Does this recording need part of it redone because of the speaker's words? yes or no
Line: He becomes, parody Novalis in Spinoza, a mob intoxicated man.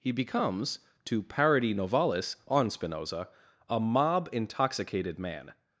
yes